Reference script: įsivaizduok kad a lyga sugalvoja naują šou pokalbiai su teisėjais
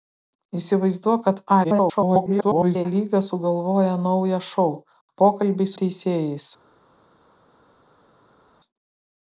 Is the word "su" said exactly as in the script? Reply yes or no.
no